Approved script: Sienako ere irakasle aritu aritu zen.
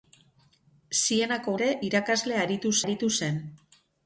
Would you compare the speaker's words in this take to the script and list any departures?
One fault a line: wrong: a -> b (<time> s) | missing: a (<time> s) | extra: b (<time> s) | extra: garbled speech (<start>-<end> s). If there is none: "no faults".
no faults